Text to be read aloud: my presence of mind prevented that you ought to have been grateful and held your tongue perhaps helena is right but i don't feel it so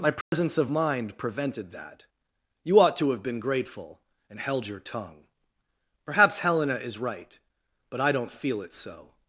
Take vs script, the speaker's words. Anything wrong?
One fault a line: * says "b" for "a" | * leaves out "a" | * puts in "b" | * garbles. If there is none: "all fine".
all fine